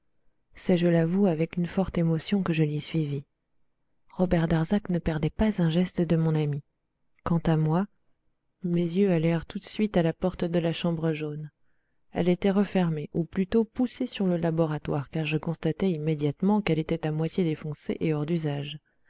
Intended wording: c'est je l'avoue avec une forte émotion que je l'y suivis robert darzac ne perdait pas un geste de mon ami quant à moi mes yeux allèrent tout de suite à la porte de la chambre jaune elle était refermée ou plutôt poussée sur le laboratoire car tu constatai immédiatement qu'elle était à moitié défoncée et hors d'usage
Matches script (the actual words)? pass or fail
fail